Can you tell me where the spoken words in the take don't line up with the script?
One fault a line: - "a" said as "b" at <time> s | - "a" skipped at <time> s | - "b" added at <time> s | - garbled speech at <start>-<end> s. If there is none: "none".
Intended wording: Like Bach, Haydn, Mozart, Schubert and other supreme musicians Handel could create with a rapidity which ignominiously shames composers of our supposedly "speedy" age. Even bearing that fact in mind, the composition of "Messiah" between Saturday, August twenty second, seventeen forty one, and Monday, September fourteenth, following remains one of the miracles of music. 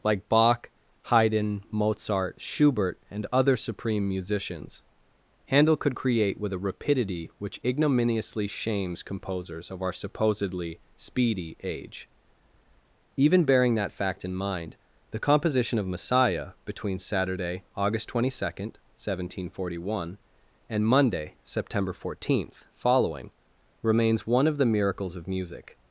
none